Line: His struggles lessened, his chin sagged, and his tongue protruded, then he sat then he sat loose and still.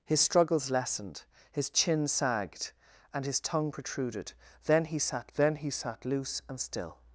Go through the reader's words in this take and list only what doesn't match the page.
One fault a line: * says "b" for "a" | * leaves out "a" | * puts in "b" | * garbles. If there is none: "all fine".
all fine